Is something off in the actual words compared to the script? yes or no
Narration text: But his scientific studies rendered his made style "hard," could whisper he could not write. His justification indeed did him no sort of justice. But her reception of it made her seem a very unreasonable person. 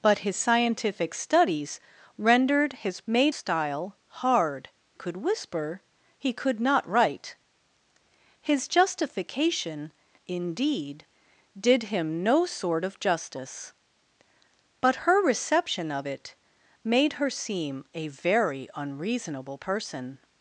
no